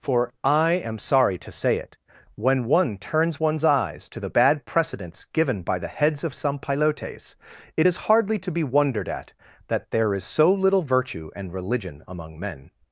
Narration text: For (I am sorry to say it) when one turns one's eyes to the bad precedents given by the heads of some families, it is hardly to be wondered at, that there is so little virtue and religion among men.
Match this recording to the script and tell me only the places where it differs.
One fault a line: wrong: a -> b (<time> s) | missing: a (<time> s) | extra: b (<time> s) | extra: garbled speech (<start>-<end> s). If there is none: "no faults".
wrong: families -> pilotes (6.6 s)